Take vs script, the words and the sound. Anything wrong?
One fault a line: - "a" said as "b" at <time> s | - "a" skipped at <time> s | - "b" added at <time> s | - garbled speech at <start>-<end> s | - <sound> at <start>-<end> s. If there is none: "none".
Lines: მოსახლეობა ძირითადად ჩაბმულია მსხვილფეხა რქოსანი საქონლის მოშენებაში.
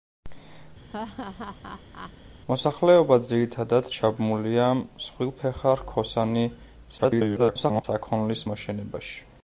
- laugh at 0.9-2.1 s
- garbled speech at 7.0-7.8 s